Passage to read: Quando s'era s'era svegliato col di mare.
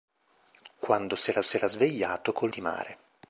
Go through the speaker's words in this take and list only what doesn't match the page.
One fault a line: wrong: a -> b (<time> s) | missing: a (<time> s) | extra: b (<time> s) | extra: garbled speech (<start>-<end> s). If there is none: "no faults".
no faults